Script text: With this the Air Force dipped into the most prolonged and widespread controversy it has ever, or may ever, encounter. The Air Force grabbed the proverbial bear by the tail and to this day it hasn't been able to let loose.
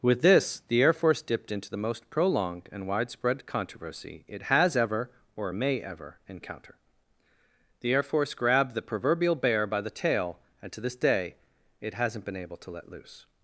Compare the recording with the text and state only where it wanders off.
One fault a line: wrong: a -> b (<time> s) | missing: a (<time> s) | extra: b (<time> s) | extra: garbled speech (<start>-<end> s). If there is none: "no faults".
no faults